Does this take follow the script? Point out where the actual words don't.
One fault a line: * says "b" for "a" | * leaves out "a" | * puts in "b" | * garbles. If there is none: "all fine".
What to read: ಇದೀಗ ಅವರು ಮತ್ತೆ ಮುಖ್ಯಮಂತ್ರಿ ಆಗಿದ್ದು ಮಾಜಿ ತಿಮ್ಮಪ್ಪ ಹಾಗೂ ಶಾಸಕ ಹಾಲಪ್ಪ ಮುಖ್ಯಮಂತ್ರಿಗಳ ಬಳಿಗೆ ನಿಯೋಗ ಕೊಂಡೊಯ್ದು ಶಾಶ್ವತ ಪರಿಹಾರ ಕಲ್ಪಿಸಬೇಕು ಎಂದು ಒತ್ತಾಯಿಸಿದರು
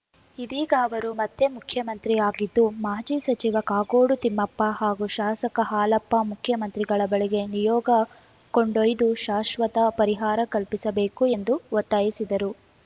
* puts in "ಸಚಿವ ಕಾಗೋಡು"